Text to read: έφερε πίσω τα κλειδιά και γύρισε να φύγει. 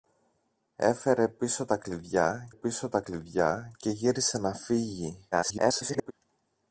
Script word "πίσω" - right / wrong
right